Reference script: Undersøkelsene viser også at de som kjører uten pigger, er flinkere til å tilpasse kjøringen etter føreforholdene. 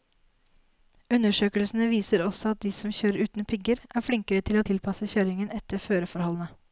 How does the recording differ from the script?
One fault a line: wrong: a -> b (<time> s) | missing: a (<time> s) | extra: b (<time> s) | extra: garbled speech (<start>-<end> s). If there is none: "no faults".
no faults